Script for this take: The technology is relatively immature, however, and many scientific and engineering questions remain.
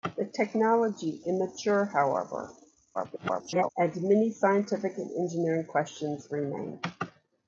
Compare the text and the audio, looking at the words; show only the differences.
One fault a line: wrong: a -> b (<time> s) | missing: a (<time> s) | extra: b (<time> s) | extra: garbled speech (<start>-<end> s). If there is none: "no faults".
missing: is relatively (1.2 s)
extra: garbled speech (2.9-3.7 s)